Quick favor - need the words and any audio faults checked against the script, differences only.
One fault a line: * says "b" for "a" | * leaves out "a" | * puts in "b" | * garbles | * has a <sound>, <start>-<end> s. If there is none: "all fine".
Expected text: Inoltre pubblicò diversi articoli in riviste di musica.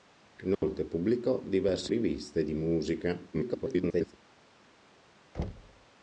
* has a dropout, 0.5-0.6 s
* leaves out "articoli in"
* garbles
* has a thud, 5.3-5.9 s